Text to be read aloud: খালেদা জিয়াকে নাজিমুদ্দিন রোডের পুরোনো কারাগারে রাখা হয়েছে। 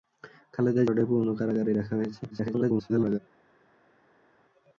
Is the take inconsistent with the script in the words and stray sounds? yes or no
yes